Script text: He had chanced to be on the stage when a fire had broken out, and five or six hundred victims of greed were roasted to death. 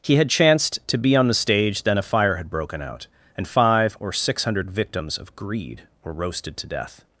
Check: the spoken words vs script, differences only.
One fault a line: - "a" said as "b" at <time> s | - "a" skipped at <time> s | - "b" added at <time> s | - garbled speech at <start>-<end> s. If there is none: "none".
- "when" said as "then" at 1.8 s